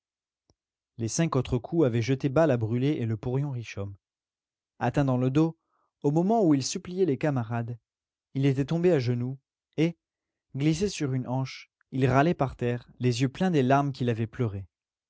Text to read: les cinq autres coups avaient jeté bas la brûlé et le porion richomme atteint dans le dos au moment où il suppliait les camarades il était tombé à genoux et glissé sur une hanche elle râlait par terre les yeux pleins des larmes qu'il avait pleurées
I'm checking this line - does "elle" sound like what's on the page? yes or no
no